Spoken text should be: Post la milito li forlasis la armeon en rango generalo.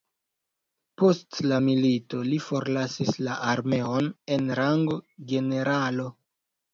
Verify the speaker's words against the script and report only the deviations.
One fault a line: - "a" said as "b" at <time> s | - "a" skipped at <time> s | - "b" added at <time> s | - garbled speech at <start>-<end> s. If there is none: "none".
none